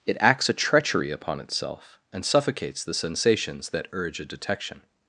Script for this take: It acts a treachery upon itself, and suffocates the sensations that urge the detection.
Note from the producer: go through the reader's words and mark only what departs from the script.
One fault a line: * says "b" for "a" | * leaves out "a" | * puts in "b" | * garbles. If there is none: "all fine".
* says "a" for "the"